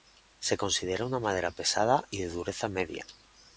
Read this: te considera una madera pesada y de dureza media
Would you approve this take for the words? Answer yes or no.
no